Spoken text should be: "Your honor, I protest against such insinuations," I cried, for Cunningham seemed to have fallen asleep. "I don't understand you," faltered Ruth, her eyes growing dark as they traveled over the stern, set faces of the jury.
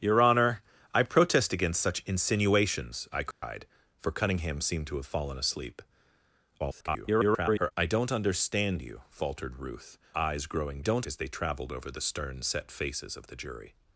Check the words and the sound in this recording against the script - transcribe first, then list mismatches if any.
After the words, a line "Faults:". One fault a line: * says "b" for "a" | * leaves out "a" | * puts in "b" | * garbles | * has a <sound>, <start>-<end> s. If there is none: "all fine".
"Your honor, I protest against such insinuations," I cried, for Cunningham seemed to have fallen asleep. [garbled] "I don't understand you," faltered Ruth, eyes growing don't as they traveled over the stern, set faces of the jury.
Faults:
* has a dropout, 3.3-3.4 s
* garbles
* leaves out "her"
* says "don't" for "dark"